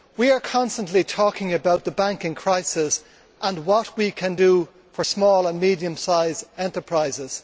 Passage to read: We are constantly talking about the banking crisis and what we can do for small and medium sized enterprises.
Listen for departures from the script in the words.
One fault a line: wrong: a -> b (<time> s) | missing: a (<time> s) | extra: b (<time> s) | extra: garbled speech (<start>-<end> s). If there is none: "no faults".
no faults